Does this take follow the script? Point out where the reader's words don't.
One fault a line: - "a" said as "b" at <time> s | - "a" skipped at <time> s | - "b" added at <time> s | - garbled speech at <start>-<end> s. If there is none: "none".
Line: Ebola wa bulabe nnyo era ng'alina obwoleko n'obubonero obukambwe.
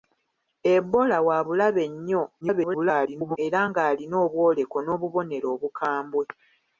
- garbled speech at 2.4-3.4 s